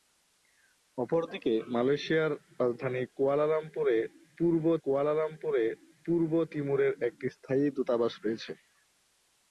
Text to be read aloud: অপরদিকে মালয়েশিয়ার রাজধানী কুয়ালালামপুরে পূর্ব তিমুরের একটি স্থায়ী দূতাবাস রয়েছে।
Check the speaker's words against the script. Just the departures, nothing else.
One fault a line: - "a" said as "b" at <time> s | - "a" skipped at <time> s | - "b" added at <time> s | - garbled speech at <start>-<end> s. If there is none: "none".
- "কুয়ালালামপুরে পূর্ব" added at 4.8 s